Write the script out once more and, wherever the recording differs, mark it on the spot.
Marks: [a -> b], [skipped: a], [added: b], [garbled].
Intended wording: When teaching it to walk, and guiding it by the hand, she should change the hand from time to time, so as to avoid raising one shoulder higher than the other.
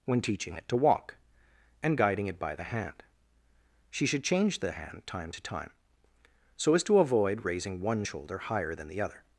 When teaching it to walk, and guiding it by the hand, she should change the hand [skipped: from] time to time, so as to avoid raising one shoulder higher than the other.